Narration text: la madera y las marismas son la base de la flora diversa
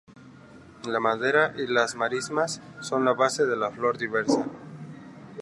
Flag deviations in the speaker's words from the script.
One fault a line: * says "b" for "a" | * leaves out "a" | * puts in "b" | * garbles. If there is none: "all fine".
all fine